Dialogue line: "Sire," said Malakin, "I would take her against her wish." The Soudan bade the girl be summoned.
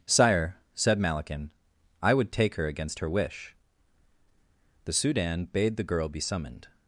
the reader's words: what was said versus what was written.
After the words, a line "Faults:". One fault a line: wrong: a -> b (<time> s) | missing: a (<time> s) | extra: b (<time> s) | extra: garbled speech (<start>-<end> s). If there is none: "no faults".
"Sire," said Malakin, "I would take her against her wish." The Soudan bade the girl be summoned.
Faults:
no faults